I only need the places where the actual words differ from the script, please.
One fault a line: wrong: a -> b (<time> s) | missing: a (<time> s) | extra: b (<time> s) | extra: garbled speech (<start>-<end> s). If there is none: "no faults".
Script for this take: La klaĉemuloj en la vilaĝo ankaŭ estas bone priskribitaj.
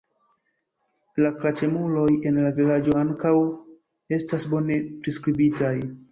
no faults